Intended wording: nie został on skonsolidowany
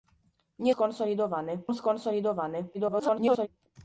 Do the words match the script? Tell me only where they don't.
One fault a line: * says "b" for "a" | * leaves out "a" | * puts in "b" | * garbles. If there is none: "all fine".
* says "skonsolidowany" for "został"
* garbles